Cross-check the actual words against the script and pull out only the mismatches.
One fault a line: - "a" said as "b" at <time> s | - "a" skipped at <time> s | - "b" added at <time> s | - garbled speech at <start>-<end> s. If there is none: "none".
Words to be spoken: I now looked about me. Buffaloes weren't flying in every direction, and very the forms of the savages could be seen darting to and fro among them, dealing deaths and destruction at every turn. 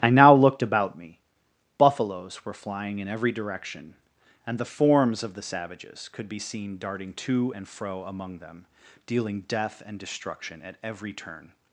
- "weren't" said as "were" at 2.4 s
- "very" skipped at 4.6 s
- "deaths" said as "death" at 9.5 s